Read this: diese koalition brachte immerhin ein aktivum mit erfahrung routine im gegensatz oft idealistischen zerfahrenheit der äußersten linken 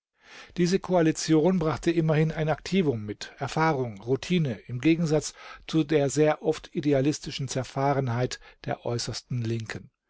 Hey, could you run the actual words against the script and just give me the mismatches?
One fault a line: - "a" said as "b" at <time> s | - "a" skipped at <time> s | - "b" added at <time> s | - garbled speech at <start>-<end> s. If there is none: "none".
- "zu der sehr" added at 5.7 s